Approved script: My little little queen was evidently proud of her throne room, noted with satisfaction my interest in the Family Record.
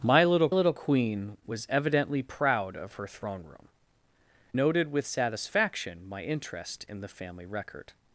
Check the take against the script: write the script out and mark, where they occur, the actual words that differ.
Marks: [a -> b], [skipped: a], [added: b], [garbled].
My little little queen was evidently proud of her throne room, noted with satisfaction my interest in the Family Record.